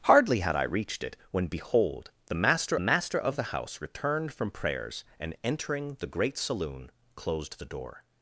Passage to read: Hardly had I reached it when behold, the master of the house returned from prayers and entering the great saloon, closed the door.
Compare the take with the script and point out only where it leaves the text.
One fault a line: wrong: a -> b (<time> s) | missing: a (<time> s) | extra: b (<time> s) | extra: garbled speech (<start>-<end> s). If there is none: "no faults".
extra: master (2.8 s)